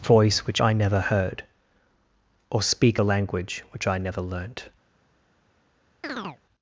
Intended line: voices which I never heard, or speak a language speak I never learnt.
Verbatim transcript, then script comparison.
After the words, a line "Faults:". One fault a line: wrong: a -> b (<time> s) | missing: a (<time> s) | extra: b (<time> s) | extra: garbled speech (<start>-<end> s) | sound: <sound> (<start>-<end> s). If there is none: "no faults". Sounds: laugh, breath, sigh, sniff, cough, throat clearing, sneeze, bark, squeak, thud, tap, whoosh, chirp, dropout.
voice which I never heard, or speak a language which I never learnt.
Faults:
wrong: voices -> voice (0.0 s)
wrong: speak -> which (3.7 s)
sound: chirp (6.0-6.4 s)